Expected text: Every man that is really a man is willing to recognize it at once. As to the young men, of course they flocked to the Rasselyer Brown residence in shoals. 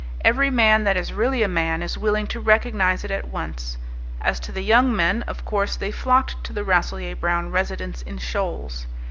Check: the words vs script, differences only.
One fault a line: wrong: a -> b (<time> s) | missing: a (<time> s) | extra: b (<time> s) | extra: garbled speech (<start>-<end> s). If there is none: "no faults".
no faults